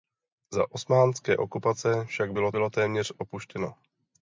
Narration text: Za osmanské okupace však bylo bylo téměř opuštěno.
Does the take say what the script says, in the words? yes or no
yes